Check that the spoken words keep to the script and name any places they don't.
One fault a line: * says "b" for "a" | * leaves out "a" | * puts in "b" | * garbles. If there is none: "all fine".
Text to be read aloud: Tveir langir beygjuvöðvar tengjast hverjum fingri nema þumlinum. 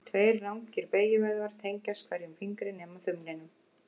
all fine